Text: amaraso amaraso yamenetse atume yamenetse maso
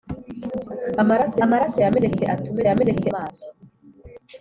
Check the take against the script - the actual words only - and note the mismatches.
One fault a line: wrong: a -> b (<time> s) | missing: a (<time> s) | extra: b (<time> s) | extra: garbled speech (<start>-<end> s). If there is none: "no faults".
no faults